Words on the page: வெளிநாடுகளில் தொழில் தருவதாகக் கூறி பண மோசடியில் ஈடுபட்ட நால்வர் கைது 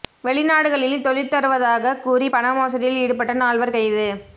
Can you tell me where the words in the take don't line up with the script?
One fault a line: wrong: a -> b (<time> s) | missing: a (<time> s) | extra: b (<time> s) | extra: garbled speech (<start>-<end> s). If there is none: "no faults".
no faults